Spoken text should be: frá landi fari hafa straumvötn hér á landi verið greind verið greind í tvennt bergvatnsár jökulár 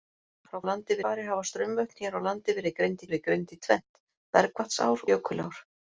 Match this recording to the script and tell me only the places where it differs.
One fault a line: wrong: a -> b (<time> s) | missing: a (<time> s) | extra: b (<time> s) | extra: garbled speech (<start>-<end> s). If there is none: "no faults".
no faults